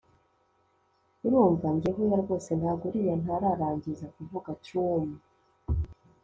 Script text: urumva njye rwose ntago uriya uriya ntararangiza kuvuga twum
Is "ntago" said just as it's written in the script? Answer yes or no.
yes